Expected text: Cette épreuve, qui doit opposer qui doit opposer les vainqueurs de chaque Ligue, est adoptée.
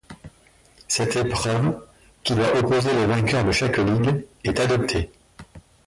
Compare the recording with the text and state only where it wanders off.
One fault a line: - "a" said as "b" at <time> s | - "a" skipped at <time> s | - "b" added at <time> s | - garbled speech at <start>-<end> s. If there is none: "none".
- "qui doit opposer" skipped at 2.9 s